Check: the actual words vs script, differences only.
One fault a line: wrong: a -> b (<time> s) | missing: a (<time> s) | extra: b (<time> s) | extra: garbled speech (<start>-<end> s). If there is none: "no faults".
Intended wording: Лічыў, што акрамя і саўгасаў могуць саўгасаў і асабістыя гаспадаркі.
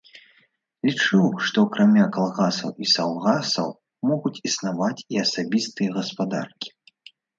extra: калгасаў (2.2 s)
wrong: саўгасаў -> існаваць (4.5 s)